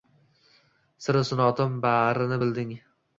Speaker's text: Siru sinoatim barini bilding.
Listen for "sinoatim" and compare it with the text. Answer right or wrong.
right